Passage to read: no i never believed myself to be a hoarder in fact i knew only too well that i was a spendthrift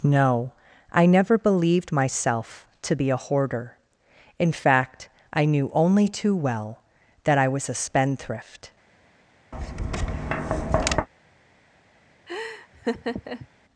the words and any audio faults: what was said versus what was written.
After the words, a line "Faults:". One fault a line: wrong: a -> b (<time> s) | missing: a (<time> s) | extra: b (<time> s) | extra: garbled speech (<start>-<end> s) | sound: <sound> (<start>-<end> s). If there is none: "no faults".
no i never believed myself to be a hoarder in fact i knew only too well that i was a spendthrift
Faults:
sound: tap (9.5-11.1 s)
sound: laugh (12.3-13.5 s)